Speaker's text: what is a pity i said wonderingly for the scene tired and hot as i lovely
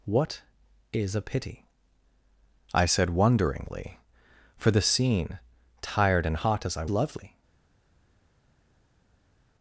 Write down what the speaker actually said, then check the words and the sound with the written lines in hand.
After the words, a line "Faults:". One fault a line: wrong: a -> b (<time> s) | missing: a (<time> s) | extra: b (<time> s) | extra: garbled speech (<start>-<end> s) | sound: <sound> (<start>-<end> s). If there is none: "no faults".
what is a pity i said wonderingly for the scene tired and hot as i lovely
Faults:
no faults